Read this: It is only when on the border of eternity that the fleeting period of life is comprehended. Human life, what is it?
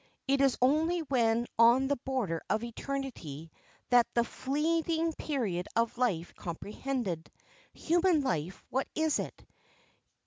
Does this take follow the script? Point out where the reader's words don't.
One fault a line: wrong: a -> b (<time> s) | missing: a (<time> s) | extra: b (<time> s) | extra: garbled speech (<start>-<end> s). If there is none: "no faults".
missing: is (6.3 s)